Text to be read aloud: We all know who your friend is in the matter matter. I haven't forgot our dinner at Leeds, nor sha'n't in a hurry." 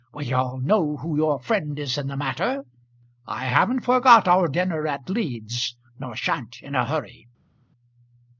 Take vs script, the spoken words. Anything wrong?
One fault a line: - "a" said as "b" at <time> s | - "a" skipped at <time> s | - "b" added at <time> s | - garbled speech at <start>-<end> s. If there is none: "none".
- "matter" skipped at 2.6 s